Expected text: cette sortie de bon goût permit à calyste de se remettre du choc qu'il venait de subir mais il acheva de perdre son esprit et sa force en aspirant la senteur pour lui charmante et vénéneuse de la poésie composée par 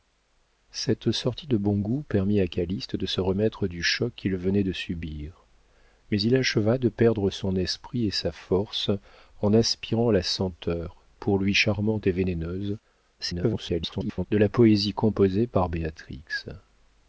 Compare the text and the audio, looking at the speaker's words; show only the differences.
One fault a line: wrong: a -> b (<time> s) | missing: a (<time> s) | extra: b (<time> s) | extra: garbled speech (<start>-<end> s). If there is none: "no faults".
extra: garbled speech (13.2-14.3 s)